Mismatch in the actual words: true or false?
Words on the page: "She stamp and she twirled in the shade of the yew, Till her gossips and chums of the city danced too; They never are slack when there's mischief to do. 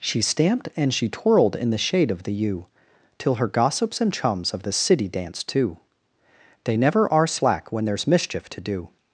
true